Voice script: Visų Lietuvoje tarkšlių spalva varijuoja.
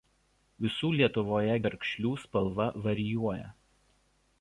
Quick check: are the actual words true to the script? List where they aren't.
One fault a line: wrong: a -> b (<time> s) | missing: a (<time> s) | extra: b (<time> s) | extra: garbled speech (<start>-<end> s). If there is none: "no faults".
no faults